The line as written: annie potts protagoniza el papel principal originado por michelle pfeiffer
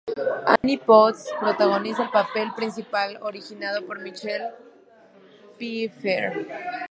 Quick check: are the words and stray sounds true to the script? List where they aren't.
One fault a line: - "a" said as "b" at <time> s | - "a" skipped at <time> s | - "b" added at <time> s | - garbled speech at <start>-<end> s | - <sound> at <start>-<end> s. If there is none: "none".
- dropout at 0.6-0.6 s